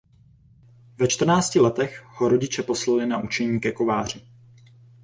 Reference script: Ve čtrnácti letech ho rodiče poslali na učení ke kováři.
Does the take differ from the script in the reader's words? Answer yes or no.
no